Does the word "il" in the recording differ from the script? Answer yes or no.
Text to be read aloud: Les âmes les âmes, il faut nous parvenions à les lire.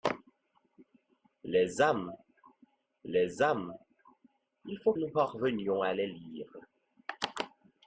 no